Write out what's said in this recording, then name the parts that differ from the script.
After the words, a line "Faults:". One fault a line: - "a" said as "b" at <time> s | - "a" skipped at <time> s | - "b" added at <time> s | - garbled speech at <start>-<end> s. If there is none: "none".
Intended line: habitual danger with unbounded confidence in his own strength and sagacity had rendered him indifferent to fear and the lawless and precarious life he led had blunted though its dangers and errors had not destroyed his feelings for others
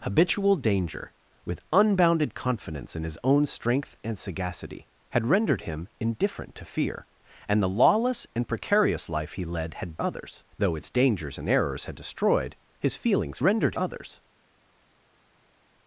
habitual danger with unbounded confidence in his own strength and sagacity had rendered him indifferent to fear and the lawless and precarious life he led had others though its dangers and errors had destroyed his feelings rendered others
Faults:
- "blunted" said as "others" at 10.0 s
- "not" skipped at 12.0 s
- "for" said as "rendered" at 13.4 s